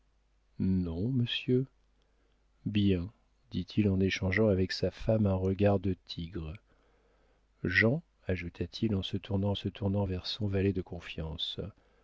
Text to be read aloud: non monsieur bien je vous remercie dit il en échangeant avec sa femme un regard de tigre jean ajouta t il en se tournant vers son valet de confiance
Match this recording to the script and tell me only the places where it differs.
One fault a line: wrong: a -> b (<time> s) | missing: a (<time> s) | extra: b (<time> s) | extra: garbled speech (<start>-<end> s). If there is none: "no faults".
missing: je vous remercie (3.1 s)
extra: se tournant (9.5 s)